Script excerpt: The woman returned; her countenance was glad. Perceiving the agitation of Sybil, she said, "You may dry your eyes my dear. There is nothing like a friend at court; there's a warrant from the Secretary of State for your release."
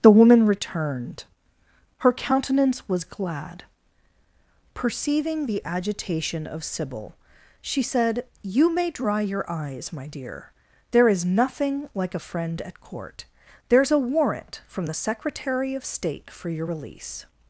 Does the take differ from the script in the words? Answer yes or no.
no